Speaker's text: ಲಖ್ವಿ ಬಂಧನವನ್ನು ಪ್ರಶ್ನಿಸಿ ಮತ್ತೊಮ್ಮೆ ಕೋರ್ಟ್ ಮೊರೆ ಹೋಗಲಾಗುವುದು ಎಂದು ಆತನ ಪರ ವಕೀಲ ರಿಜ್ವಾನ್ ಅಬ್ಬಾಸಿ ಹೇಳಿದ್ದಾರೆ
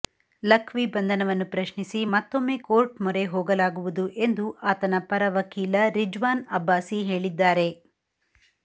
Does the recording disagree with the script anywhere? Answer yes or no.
no